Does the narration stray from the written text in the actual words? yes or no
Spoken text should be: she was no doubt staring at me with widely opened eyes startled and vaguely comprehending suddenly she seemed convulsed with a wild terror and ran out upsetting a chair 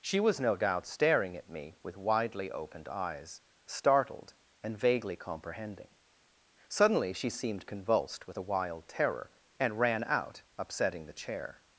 yes